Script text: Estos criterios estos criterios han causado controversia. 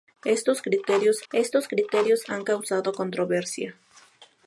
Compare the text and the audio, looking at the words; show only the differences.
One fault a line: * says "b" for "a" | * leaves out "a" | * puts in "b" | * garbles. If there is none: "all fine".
all fine